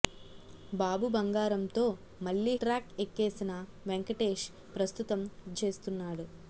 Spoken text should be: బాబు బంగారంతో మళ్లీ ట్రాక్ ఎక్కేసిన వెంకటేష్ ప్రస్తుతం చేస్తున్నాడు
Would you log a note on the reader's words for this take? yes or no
no